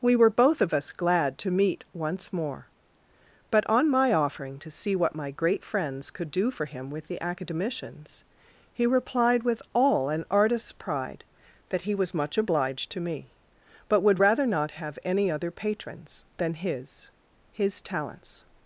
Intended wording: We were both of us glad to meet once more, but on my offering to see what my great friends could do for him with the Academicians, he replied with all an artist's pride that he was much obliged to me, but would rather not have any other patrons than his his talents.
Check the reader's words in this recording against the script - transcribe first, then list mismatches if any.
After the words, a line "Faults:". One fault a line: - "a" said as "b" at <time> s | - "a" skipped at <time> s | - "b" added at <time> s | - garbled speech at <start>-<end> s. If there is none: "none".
We were both of us glad to meet once more, but on my offering to see what my great friends could do for him with the Academicians, he replied with all an artist's pride that he was much obliged to me, but would rather not have any other patrons than his his talents.
Faults:
none